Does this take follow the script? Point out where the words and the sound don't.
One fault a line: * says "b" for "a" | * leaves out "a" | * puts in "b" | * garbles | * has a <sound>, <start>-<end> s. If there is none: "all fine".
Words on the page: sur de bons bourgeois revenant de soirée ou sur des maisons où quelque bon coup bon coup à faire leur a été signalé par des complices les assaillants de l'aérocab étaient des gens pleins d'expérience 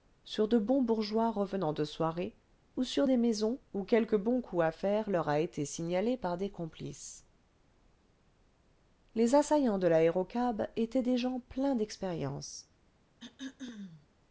* leaves out "bon coup"
* has a throat clearing, 13.2-14.1 s